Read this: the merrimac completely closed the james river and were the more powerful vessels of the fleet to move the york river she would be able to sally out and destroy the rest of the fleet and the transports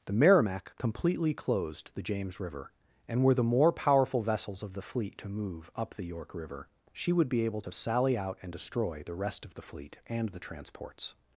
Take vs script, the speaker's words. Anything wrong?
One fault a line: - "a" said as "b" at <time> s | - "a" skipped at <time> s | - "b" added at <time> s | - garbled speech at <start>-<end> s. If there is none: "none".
- "up" added at 5.8 s